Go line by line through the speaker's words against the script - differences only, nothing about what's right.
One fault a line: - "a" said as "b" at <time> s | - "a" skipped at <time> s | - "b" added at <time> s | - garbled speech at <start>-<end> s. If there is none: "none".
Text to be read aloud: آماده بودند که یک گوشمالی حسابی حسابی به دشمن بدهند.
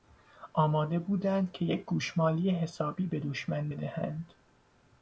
- "حسابی" skipped at 3.1 s